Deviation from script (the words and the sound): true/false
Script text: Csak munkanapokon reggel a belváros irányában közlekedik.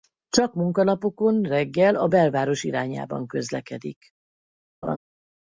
true